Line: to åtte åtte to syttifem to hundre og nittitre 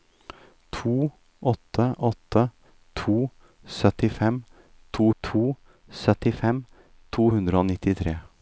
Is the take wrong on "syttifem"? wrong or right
right